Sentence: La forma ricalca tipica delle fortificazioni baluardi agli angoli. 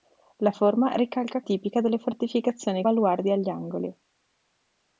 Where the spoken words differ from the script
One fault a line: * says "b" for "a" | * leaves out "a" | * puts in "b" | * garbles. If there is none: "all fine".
all fine